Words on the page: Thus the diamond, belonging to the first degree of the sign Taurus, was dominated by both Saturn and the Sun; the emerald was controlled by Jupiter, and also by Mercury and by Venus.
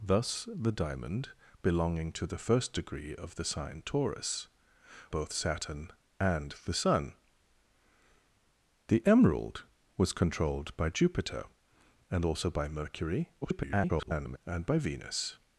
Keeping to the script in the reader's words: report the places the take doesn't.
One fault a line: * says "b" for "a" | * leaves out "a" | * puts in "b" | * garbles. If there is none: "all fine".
* leaves out "was dominated by"
* garbles